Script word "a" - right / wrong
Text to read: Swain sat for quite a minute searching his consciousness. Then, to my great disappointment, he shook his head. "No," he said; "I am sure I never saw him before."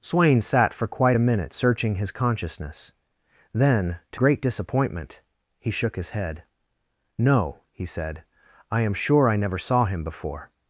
right